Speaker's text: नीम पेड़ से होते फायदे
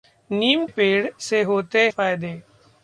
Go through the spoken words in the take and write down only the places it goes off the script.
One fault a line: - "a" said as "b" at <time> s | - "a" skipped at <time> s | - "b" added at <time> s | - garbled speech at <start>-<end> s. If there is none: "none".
none